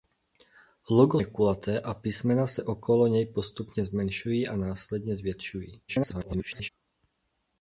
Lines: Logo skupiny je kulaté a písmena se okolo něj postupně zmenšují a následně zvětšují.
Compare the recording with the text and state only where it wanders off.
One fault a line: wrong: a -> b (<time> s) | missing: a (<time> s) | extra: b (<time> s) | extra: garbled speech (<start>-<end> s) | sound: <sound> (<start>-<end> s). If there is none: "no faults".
missing: skupiny (1.2 s)
extra: garbled speech (5.9-6.7 s)